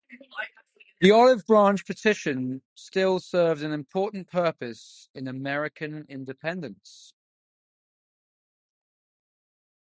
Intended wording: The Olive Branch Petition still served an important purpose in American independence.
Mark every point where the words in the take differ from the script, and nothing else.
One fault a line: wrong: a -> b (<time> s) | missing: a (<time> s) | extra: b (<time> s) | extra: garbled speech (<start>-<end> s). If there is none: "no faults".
no faults